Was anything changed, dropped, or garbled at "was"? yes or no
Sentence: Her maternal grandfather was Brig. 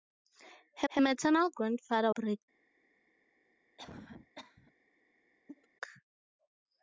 yes